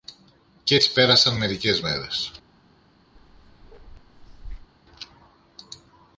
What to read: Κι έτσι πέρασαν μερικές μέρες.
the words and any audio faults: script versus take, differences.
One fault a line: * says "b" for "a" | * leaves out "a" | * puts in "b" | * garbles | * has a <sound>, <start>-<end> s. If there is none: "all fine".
* has a bark, 3.1-4.7 s